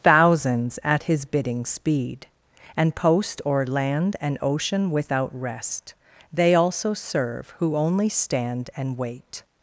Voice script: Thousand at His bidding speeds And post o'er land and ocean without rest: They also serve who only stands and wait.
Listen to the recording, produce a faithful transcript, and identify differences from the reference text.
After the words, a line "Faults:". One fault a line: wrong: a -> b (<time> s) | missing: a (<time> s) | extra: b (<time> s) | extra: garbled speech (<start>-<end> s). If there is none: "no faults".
Thousands at His bidding speed And post o'er land and ocean without rest: They also serve who only stand and wait.
Faults:
wrong: Thousand -> Thousands (0.0 s)
wrong: speeds -> speed (1.6 s)
wrong: stands -> stand (8.1 s)